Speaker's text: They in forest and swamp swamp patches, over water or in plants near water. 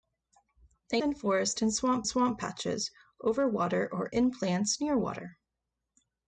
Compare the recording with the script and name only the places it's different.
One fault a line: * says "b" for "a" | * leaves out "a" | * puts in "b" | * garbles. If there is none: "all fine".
all fine